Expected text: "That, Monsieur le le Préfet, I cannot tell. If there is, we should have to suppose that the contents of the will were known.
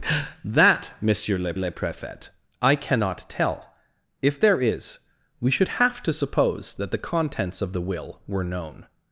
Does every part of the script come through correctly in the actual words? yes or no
yes